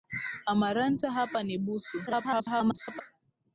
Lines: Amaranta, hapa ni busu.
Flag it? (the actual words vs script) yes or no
yes